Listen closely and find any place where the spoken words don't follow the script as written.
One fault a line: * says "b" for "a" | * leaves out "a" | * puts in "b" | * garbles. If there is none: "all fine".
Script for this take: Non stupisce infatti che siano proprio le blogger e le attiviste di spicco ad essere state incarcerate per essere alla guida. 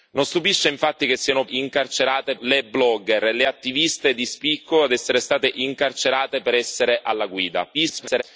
* says "incarcerate" for "proprio"
* garbles